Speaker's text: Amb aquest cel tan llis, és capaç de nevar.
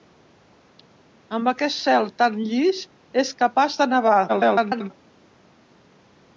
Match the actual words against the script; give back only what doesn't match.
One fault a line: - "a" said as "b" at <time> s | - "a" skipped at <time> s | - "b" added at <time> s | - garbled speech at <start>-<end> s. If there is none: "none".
- garbled speech at 4.3-4.9 s